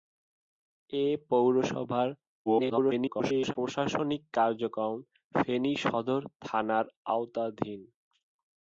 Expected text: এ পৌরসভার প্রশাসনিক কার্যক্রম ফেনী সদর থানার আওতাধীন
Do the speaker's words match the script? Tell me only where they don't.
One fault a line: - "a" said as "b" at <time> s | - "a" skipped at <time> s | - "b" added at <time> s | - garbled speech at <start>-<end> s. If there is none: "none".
- garbled speech at 2.5-3.5 s